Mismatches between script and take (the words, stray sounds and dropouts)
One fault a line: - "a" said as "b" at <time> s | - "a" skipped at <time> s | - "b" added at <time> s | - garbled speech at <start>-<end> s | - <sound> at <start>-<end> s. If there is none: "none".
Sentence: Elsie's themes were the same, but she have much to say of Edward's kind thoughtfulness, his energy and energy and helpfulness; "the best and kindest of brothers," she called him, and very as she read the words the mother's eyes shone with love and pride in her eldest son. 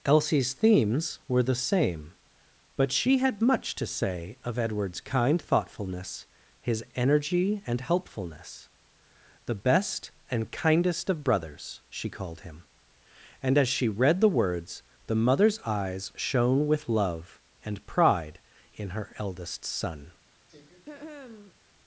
- "have" said as "had" at 3.2 s
- "energy and" skipped at 7.8 s
- "very" skipped at 13.6 s
- throat clearing at 20.5-21.6 s